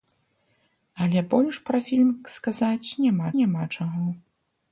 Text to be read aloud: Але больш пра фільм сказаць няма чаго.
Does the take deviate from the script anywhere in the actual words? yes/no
yes